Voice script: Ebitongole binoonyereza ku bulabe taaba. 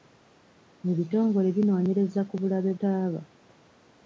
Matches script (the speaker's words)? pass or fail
pass